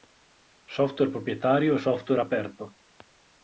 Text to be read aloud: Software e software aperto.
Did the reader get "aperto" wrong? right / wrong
right